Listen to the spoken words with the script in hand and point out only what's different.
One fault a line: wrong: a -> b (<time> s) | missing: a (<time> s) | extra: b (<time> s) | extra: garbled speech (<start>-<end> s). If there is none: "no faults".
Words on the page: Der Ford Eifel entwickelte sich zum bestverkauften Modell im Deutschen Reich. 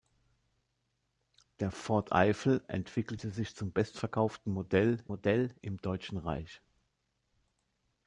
extra: Modell (5.1 s)